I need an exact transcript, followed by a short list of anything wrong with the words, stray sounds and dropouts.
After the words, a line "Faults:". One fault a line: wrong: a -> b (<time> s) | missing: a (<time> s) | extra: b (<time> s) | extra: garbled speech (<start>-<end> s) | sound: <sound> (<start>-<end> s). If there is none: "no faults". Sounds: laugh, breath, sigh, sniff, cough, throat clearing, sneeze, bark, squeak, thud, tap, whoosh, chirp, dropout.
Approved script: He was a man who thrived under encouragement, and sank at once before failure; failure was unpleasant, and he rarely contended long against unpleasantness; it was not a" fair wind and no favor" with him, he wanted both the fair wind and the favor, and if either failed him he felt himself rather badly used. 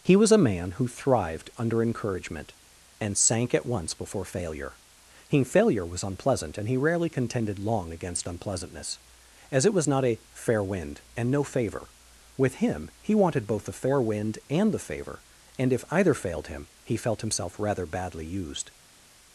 He was a man who thrived under encouragement, and sank at once before failure; he failure was unpleasant, and he rarely contended long against unpleasantness; as it was not a" fair wind and no favor" with him, he wanted both the fair wind and the favor, and if either failed him he felt himself rather badly used.
Faults:
extra: he (5.3 s)
extra: as (9.5 s)